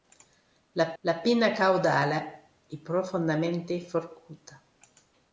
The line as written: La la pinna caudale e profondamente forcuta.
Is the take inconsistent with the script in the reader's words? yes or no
no